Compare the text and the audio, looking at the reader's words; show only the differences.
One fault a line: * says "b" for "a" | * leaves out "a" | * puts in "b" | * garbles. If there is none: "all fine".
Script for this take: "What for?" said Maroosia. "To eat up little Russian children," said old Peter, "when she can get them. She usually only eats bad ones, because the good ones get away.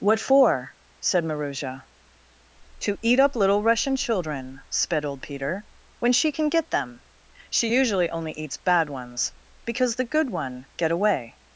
* says "sped" for "said"
* says "one" for "ones"